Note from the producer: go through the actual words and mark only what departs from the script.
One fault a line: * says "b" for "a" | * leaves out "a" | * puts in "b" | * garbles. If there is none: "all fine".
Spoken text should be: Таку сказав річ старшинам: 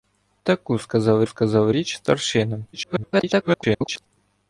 * puts in "сказав"
* garbles